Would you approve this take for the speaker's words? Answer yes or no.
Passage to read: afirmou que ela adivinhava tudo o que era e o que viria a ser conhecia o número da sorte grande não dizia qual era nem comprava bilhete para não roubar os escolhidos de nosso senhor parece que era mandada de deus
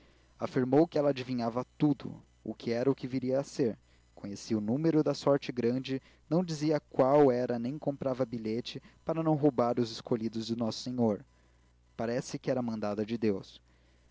yes